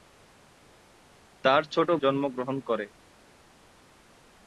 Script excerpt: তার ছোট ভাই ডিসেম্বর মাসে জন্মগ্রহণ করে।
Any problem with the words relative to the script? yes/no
yes